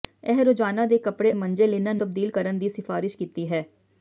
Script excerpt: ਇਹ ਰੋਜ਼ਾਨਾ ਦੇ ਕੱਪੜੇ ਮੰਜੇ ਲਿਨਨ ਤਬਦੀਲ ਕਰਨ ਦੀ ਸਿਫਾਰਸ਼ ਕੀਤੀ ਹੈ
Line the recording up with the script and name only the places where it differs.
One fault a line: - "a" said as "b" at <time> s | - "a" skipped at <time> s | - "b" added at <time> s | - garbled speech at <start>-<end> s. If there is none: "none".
none